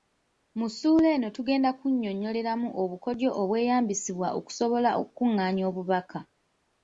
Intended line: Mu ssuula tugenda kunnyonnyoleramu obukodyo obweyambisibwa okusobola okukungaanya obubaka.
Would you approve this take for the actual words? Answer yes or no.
no